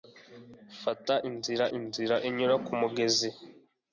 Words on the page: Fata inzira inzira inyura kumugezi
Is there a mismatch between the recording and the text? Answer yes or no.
no